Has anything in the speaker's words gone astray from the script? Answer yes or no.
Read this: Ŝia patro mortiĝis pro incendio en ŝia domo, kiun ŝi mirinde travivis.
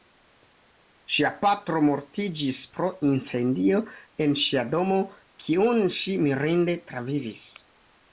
no